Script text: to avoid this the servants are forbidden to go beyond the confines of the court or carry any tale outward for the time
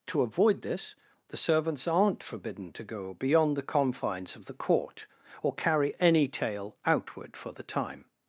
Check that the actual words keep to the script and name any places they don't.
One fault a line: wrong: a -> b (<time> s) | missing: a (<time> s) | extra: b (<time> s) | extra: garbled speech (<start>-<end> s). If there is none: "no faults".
wrong: are -> aren't (1.9 s)